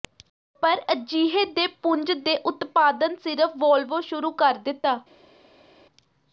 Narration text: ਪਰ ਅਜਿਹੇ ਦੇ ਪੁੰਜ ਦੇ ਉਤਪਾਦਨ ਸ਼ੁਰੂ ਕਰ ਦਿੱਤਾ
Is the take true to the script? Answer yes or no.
no